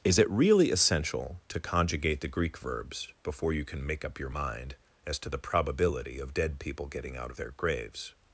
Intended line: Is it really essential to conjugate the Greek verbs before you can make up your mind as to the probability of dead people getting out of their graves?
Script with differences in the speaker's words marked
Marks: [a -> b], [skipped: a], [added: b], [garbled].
Is it really essential to conjugate the Greek verbs before you can make up your mind as to the probability of dead people getting out of their graves?